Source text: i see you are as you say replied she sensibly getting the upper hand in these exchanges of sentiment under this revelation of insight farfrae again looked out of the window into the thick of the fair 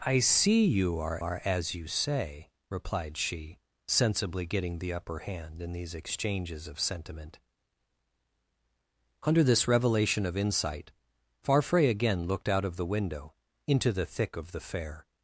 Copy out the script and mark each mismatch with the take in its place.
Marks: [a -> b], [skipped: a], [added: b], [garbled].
i see you are [added: are] as you say replied she sensibly getting the upper hand in these exchanges of sentiment under this revelation of insight farfrae again looked out of the window into the thick of the fair